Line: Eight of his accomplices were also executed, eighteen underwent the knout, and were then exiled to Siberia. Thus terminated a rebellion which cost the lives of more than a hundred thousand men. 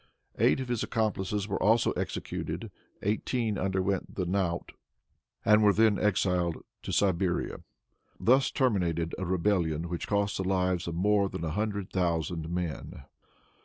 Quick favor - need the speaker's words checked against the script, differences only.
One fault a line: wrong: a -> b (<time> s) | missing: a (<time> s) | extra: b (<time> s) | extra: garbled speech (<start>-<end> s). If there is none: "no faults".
no faults